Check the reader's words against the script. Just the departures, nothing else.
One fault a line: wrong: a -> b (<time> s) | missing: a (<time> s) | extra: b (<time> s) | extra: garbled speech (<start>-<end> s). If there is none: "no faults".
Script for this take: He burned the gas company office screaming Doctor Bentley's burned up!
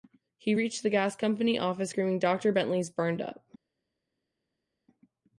wrong: burned -> reached (0.5 s)